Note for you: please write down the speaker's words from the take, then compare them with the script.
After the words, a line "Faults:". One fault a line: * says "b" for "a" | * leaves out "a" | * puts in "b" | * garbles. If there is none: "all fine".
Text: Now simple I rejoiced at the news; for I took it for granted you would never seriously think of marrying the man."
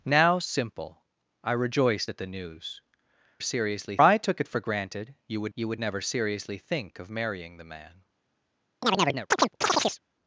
Now simple I rejoiced at the news; seriously I took it for granted you would you would never seriously think of marrying the man."
Faults:
* says "seriously" for "for"
* puts in "you would"